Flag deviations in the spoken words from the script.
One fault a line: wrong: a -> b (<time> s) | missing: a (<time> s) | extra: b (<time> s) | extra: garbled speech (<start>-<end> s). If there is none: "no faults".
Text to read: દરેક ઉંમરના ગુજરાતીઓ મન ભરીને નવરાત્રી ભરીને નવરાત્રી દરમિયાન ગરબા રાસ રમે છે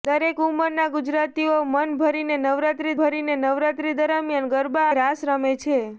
no faults